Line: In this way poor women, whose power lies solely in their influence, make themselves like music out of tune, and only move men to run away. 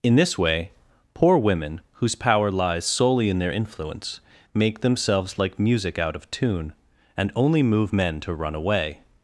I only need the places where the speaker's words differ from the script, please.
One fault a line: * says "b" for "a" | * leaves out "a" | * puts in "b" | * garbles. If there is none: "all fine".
all fine